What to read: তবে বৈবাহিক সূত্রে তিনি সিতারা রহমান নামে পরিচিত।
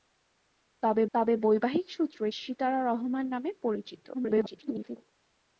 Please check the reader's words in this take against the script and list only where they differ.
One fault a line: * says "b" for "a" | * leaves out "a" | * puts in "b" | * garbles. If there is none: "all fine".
* puts in "তবে"
* leaves out "তিনি"
* garbles